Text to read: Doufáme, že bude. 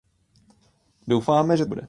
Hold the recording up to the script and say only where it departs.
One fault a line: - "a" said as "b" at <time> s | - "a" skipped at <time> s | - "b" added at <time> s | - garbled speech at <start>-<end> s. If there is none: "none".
none